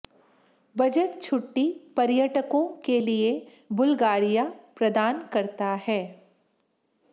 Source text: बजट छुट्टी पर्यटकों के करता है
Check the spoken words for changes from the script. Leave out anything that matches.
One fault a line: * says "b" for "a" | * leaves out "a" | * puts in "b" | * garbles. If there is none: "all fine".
* puts in "लिए बुल्गारिया प्रदान"